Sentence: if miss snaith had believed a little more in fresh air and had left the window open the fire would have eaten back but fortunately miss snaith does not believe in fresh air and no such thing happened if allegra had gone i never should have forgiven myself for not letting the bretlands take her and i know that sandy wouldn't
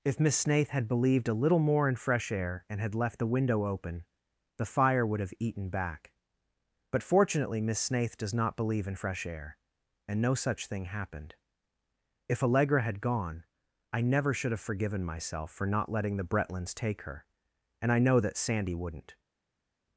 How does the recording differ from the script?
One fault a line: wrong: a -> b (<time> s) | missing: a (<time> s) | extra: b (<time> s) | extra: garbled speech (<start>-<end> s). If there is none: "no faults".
no faults